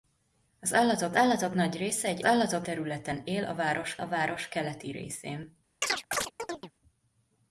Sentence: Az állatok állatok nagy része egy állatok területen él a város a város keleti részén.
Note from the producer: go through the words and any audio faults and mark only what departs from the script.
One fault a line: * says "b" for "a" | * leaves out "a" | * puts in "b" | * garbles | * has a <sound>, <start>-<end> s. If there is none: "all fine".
* has a chirp, 5.8-6.7 s